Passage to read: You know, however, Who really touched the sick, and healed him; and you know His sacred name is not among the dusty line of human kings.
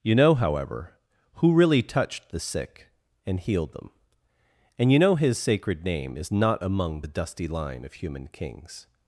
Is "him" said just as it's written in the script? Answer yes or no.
no